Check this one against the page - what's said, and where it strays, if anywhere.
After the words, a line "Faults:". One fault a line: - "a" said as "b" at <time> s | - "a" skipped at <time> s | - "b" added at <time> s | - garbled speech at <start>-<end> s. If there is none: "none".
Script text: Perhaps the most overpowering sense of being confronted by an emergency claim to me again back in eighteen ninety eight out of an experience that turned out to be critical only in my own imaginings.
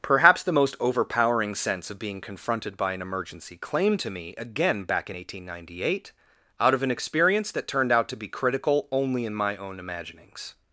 Perhaps the most overpowering sense of being confronted by an emergency claim to me again back in eighteen ninety eight out of an experience that turned out to be critical only in my own imaginings.
Faults:
none